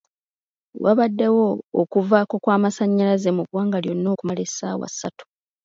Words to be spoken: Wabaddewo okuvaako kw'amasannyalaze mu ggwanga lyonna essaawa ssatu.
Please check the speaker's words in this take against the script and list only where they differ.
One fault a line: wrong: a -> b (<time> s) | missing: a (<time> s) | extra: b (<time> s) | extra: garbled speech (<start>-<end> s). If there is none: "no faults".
extra: okumala (4.1 s)